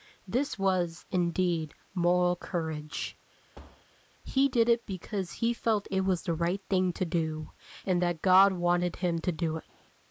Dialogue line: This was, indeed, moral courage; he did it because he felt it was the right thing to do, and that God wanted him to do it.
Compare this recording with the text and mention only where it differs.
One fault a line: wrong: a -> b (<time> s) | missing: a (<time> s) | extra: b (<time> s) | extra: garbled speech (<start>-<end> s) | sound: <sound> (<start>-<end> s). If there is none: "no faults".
sound: thud (3.5-3.8 s)